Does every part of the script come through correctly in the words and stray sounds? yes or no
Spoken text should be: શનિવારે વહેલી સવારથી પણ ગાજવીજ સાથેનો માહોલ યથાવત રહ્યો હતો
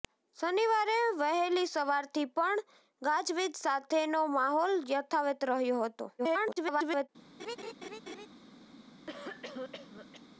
no